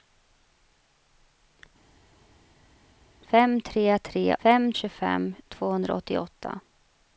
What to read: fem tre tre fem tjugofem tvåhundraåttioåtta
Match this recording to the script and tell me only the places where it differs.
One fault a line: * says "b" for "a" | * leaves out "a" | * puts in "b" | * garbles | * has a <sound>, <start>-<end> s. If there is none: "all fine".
all fine